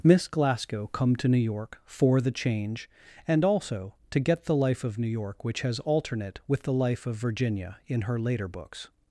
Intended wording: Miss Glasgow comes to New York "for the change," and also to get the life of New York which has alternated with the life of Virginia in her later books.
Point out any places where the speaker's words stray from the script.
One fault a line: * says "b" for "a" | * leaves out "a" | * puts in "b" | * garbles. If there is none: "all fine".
* says "come" for "comes"
* says "alternate" for "alternated"